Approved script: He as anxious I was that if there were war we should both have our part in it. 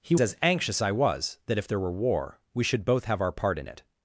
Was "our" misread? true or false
false